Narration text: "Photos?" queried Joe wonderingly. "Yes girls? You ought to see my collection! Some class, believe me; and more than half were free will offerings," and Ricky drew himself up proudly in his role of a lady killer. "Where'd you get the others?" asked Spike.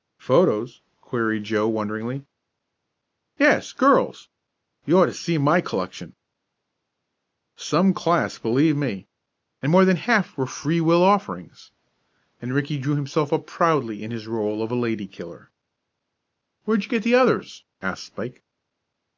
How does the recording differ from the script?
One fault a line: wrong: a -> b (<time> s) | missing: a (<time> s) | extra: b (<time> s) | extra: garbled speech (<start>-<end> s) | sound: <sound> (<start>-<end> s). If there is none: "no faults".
no faults